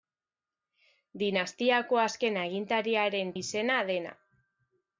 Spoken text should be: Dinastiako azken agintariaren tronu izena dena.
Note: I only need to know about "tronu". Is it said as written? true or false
false